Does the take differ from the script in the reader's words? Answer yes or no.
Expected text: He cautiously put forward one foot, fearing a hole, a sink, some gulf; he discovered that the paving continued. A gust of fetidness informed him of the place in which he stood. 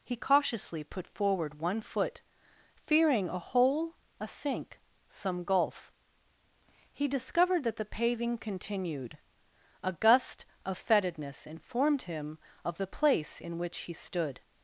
no